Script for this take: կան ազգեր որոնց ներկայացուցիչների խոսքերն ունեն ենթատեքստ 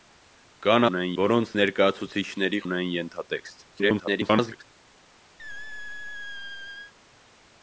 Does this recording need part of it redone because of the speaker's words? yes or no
yes